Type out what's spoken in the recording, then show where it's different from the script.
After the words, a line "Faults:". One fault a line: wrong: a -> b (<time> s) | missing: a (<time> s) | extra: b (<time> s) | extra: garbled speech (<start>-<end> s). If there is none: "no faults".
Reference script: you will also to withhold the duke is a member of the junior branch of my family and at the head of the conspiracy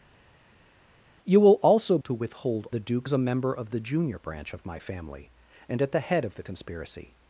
you will also to withhold the duke is a member of the junior branch of my family and at the head of the conspiracy
Faults:
no faults